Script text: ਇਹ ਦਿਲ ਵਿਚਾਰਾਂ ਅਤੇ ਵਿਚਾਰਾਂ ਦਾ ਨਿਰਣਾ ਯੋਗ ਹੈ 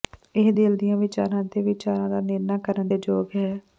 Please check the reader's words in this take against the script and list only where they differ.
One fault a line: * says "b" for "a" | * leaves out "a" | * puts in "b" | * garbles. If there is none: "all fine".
* puts in "ਦੀਆਂ"
* puts in "ਕਰਨ ਦੇ"